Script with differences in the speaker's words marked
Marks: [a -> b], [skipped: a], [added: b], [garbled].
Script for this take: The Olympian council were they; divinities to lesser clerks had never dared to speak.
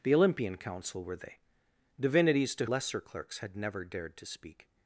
The Olympian council were they; divinities to lesser clerks had never dared to speak.